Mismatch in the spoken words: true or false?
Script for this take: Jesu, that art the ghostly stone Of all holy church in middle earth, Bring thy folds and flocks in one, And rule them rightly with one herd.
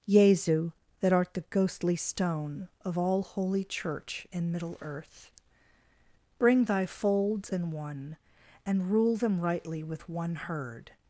true